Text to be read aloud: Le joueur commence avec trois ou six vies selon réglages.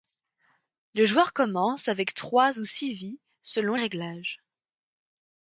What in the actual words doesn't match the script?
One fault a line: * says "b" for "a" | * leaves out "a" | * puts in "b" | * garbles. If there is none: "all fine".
all fine